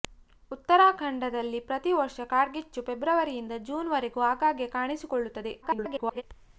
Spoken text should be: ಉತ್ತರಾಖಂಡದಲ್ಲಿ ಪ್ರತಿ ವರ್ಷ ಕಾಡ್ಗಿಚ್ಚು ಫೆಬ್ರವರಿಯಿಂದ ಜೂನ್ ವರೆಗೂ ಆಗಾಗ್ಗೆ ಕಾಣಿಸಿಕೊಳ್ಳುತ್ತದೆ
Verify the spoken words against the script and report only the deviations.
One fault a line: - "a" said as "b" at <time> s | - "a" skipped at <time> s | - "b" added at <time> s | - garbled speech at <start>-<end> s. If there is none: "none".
- garbled speech at 5.6-6.2 s